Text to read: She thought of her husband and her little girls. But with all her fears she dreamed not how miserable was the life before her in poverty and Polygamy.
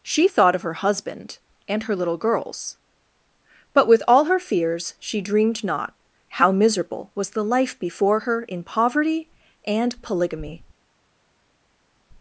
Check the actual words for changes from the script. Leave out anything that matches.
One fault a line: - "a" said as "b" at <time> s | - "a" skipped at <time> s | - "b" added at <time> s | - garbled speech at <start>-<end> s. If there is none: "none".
none